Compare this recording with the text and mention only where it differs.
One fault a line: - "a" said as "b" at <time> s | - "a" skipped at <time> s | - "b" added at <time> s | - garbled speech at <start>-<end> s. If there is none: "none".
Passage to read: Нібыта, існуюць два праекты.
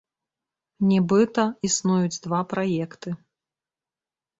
none